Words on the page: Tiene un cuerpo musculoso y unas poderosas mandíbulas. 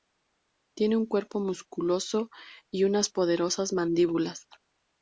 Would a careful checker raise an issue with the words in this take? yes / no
no